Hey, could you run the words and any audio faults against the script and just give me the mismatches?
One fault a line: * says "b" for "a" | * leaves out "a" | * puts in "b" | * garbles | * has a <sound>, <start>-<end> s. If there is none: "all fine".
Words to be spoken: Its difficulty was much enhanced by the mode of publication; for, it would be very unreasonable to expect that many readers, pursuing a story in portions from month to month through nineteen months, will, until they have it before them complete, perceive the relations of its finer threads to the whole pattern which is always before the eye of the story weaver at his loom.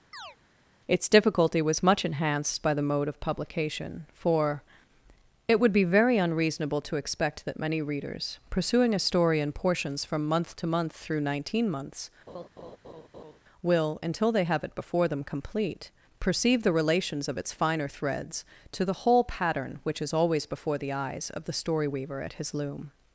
* has a chirp, 0.1-0.4 s
* has a laugh, 12.3-13.4 s
* says "eyes" for "eye"